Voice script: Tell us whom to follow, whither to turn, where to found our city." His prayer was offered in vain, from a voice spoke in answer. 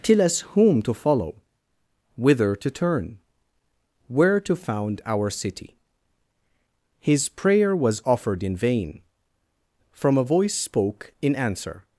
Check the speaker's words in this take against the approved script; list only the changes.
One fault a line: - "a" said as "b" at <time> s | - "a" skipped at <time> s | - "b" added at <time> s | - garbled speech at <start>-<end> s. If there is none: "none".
none